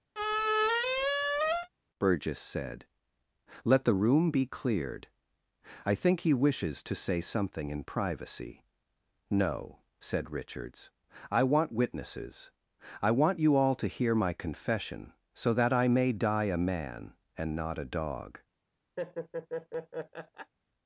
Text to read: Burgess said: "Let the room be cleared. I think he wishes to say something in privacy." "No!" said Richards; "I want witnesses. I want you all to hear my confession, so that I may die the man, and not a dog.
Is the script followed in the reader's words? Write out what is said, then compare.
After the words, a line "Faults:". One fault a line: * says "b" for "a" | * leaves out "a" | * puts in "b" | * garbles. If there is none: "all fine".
Burgess said: "Let the room be cleared. I think he wishes to say something in privacy." "No!" said Richards; "I want witnesses. I want you all to hear my confession, so that I may die a man, and not a dog.
Faults:
* says "a" for "the"